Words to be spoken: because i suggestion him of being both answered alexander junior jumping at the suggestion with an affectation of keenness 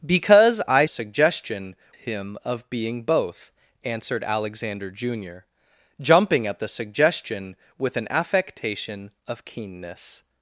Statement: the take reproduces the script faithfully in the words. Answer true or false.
true